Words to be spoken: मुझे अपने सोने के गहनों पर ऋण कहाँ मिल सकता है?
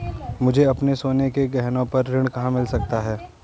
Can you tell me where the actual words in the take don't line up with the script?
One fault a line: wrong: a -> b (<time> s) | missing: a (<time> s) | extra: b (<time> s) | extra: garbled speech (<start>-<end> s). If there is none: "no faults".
no faults